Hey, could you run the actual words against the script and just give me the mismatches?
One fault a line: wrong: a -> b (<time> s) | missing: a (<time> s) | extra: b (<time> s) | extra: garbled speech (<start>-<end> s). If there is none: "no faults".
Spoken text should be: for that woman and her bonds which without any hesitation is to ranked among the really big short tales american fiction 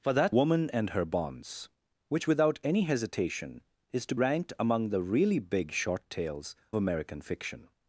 no faults